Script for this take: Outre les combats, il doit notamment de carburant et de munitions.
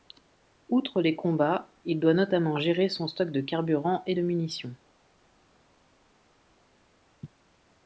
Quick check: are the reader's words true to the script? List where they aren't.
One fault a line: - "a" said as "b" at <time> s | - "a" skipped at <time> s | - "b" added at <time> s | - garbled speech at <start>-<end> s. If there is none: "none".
- "gérer son stock" added at 2.6 s